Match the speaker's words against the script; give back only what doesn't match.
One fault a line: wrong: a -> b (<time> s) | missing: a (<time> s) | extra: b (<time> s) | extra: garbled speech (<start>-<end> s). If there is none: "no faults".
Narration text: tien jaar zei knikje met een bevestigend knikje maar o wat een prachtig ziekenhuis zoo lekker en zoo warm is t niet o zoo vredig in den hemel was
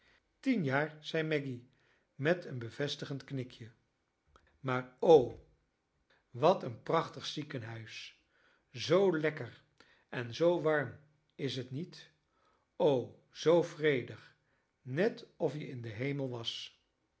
wrong: knikje -> maggy (1.2 s)
extra: net of je (14.8 s)